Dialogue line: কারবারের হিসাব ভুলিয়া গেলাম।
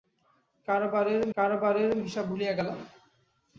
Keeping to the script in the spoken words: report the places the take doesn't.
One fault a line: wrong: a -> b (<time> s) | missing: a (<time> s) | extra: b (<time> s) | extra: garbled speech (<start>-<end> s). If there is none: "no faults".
extra: কারবারের (1.4 s)